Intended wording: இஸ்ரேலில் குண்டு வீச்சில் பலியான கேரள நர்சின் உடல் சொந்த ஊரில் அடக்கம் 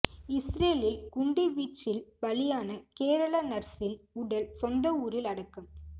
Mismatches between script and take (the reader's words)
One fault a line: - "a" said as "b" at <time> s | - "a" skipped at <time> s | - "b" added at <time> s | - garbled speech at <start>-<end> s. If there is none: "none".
none